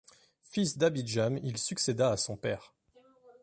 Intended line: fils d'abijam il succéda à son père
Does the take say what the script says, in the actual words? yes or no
yes